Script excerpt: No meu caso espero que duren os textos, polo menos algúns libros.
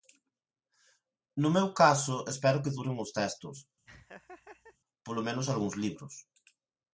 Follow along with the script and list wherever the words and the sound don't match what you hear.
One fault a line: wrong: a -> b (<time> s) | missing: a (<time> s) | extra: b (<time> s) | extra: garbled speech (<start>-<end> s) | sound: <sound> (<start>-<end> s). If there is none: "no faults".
sound: laugh (3.9-4.8 s)